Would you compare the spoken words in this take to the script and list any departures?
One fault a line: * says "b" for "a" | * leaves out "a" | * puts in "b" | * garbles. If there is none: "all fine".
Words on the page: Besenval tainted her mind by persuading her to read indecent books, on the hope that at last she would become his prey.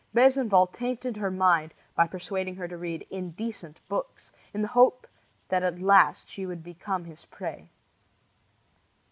* says "in" for "on"